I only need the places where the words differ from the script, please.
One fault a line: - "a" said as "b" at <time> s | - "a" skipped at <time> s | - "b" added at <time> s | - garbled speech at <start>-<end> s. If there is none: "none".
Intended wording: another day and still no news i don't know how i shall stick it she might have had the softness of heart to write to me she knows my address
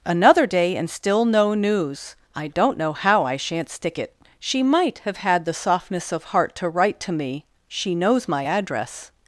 - "shall" said as "shan't" at 3.4 s